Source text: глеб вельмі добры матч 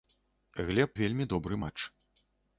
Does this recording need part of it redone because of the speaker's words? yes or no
no